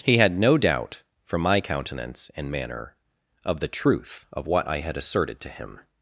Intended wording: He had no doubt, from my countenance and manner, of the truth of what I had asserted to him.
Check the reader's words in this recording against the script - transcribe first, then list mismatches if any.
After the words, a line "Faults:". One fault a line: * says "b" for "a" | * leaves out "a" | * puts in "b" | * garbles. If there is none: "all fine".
He had no doubt, from my countenance and manner, of the truth of what I had asserted to him.
Faults:
all fine